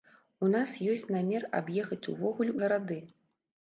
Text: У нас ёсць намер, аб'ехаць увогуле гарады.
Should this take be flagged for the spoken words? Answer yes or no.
no